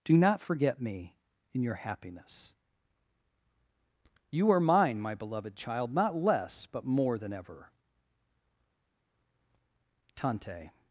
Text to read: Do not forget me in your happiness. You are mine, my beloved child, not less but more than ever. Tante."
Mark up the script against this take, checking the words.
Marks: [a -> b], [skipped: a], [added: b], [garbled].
Do not forget me in your happiness. You are mine, my beloved child, not less but more than ever. Tante."